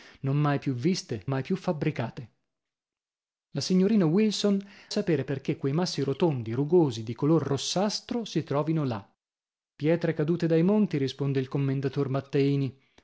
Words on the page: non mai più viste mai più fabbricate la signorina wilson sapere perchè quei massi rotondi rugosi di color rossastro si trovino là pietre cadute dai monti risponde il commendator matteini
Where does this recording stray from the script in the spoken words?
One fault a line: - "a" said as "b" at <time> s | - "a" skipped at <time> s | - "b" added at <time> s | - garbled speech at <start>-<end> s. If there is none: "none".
none